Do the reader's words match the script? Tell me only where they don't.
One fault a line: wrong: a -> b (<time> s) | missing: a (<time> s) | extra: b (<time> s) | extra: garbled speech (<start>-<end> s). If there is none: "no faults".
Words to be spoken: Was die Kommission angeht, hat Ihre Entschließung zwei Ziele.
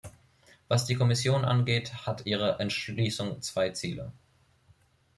no faults